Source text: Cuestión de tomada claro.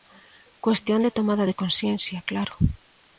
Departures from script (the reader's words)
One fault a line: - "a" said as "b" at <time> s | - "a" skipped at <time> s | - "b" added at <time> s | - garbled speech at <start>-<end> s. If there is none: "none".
- "de consciencia" added at 1.4 s